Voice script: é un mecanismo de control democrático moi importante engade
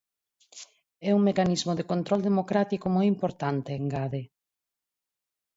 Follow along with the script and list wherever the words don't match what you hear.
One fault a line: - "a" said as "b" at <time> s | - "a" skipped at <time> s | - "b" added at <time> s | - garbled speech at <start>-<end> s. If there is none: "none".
none